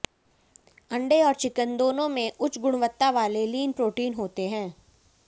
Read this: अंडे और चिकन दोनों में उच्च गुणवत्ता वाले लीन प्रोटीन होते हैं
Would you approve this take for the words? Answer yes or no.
yes